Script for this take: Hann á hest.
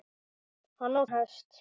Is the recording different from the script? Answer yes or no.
no